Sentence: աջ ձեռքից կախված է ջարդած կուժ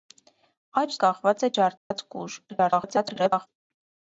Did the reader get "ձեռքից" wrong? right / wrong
wrong